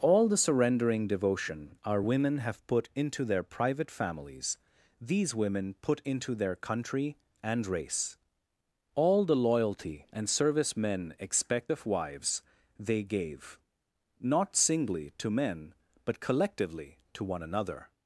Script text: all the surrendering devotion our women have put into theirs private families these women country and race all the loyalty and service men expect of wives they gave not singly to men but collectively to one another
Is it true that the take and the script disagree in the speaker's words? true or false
true